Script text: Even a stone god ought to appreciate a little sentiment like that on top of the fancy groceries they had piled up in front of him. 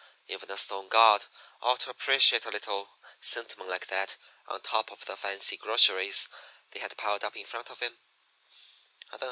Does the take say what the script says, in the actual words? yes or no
yes